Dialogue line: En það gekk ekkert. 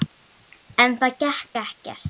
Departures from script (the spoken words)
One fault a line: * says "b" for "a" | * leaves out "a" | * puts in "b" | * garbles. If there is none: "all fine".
all fine